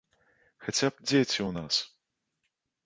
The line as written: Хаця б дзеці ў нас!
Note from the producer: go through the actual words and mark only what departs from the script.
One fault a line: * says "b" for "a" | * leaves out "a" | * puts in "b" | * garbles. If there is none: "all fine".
all fine